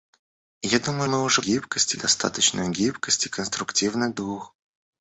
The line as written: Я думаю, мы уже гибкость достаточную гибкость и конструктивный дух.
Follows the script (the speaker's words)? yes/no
yes